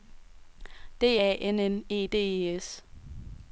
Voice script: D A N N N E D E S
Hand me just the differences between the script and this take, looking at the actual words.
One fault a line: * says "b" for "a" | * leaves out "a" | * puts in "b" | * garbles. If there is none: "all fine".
* leaves out "N"